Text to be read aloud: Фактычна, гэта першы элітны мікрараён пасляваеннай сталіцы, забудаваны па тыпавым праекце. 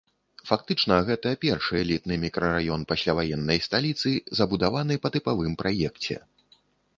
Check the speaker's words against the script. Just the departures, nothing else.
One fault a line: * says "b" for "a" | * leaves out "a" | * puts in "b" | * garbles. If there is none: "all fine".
all fine